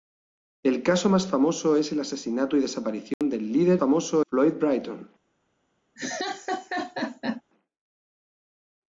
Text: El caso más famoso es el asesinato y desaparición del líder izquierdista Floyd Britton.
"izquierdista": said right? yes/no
no